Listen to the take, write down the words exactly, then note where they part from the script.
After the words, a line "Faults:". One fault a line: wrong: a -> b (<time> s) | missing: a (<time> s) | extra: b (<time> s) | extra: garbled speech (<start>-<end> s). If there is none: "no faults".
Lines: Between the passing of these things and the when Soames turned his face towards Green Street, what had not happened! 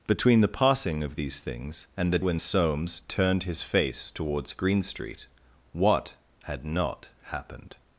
Between the passing of these things and the when Soames turned his face towards Green Street, what had not happened!
Faults:
no faults